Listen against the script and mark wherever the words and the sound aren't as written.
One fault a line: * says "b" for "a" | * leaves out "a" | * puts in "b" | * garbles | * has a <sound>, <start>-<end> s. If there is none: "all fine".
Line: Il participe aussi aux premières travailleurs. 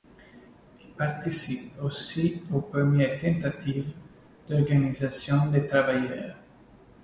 * puts in "tentatives d'organisation des"